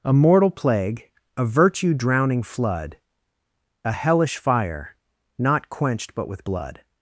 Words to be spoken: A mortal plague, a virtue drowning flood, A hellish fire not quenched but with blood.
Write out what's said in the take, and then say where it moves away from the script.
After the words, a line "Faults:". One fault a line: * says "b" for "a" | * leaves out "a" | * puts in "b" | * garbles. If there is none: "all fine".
A mortal plague, a virtue drowning flood, A hellish fire not quenched but with blood.
Faults:
all fine